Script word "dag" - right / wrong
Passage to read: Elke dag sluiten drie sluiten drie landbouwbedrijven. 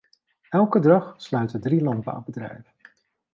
right